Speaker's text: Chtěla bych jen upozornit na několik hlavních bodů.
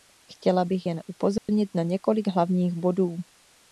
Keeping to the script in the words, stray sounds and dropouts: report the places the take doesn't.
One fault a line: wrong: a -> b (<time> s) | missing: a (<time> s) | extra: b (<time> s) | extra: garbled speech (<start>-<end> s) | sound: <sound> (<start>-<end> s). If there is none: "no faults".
sound: dropout (1.4-1.5 s)